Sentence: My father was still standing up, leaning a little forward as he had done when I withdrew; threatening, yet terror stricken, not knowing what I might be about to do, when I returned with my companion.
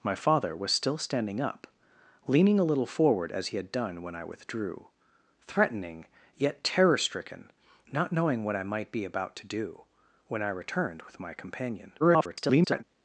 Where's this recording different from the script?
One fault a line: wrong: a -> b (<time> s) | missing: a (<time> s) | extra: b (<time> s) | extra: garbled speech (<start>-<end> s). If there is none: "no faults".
extra: garbled speech (12.0-12.8 s)